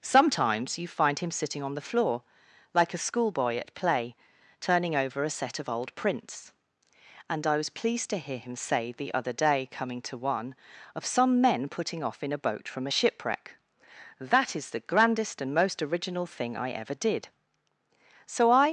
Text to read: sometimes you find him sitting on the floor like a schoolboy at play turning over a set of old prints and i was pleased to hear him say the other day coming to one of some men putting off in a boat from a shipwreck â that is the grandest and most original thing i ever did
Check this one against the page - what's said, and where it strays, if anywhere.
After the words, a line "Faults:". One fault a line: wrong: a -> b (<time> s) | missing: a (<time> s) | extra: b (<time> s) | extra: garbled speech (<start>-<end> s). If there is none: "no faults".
sometimes you find him sitting on the floor like a schoolboy at play turning over a set of old prints and i was pleased to hear him say the other day coming to one of some men putting off in a boat from a shipwreck that is the grandest and most original thing i ever did so i
Faults:
missing: â (13.5 s)
extra: so i (18.3 s)